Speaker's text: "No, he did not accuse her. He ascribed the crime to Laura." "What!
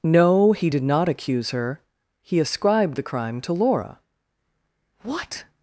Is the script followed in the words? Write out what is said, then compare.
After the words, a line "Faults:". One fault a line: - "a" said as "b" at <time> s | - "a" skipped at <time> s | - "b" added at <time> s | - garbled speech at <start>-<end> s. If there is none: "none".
"No, he did not accuse her. He ascribed the crime to Laura." "What!
Faults:
none